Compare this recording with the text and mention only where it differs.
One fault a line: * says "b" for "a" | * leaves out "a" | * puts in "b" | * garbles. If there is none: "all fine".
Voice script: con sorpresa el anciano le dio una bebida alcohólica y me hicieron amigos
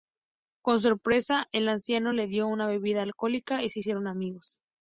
* says "se" for "me"